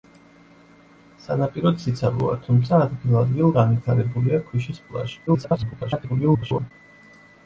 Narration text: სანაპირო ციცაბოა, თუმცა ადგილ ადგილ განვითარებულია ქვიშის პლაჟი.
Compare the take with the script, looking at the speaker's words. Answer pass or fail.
fail